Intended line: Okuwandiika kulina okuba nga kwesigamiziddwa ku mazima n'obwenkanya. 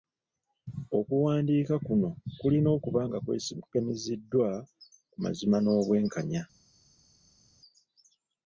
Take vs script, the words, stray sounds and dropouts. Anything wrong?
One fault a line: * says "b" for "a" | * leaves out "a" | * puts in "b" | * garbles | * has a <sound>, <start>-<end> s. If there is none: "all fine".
* puts in "kuno"